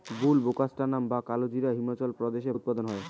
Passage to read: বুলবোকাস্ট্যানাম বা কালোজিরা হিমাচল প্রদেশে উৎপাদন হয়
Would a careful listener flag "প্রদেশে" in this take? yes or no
no